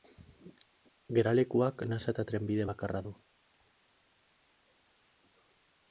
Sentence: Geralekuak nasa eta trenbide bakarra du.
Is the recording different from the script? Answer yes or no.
no